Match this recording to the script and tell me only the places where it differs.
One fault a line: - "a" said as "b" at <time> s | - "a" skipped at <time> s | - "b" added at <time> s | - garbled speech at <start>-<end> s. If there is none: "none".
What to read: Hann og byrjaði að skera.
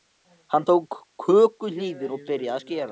- "tók kökuhnífinn" added at 0.7 s